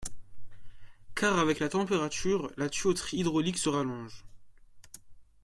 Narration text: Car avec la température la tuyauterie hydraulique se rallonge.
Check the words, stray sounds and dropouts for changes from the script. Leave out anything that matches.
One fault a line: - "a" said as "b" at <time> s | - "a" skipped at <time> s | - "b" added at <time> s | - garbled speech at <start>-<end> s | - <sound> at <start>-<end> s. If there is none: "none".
none